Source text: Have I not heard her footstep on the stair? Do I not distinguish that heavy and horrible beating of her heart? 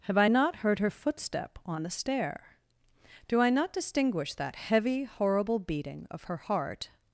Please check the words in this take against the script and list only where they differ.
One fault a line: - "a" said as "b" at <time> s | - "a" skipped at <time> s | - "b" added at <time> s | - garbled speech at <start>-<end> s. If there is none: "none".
- "and" skipped at 5.0 s